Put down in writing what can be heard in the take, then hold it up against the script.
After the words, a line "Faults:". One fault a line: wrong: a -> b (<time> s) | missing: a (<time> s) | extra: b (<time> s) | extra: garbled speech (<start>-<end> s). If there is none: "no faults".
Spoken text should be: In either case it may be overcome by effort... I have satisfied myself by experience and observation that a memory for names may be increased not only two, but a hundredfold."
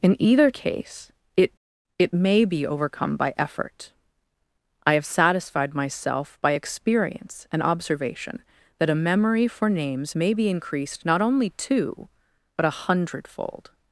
In either case it it may be overcome by effort... I have satisfied myself by experience and observation that a memory for names may be increased not only two, but a hundredfold."
Faults:
extra: it (2.0 s)